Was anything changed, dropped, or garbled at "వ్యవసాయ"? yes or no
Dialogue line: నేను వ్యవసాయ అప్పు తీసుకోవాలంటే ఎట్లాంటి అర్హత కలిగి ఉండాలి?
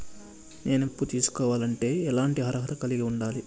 yes